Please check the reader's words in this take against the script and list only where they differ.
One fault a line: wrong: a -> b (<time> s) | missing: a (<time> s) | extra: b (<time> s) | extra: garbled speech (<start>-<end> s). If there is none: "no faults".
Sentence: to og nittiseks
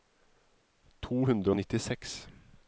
extra: hundre (1.3 s)